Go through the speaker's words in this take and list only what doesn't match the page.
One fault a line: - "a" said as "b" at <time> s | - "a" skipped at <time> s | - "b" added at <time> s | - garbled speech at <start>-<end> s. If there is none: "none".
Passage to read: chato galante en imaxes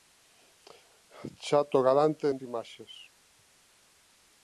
none